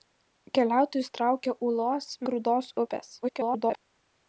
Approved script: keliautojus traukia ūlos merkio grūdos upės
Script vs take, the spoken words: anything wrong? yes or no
yes